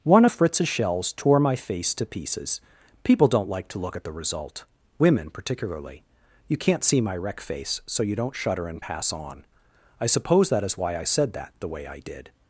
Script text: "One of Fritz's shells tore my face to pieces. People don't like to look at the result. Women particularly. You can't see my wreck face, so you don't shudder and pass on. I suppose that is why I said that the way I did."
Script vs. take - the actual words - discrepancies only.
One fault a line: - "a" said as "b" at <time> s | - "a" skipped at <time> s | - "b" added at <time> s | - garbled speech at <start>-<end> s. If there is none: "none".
none